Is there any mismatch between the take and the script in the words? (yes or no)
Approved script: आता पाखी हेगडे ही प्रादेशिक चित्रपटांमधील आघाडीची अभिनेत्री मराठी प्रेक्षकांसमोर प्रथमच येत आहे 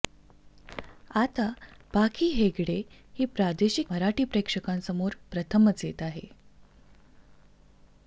yes